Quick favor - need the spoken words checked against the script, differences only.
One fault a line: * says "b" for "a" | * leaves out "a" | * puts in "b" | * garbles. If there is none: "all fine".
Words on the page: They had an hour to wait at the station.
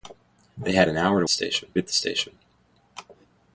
* says "station" for "wait"